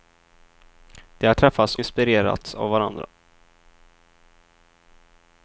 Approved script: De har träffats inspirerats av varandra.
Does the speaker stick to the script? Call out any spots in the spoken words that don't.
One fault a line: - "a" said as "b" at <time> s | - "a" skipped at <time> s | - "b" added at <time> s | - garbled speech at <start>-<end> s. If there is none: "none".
none